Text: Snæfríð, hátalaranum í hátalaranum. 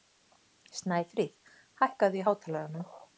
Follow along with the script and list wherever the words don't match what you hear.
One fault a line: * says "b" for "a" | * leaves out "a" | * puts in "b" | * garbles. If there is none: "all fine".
* says "hækkaðu" for "hátalaranum"